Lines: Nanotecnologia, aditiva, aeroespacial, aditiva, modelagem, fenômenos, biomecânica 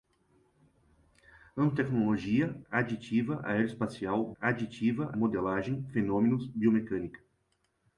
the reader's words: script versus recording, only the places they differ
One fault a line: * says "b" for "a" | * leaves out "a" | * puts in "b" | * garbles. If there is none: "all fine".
all fine